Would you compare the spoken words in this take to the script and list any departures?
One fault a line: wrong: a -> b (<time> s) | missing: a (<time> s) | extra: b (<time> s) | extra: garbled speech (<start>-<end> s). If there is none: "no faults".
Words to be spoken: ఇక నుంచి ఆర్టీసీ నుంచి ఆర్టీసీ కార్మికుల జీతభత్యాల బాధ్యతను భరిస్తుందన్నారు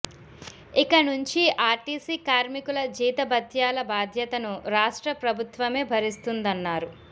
missing: నుంచి ఆర్టీసీ (2.1 s)
extra: రాష్ట్ర ప్రభుత్వమే (4.8 s)